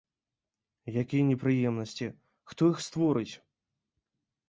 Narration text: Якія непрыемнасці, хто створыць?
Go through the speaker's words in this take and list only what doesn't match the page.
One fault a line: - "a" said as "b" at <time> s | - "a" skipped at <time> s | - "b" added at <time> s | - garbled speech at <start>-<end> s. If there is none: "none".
- "іх" added at 2.8 s